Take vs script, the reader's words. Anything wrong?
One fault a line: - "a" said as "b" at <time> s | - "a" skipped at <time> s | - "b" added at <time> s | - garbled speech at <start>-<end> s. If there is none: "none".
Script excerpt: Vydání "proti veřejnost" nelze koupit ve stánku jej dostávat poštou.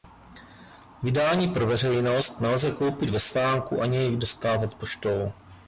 - "proti" said as "pro" at 1.5 s
- "ani" added at 3.8 s